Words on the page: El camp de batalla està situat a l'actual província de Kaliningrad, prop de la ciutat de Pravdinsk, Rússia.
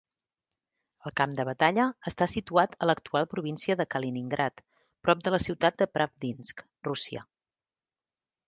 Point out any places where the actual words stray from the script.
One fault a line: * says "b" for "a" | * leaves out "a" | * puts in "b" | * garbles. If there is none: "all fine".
all fine